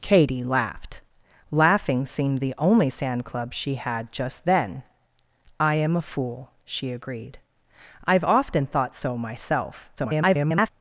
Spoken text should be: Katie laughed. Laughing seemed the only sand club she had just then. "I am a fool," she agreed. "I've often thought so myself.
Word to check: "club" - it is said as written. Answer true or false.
true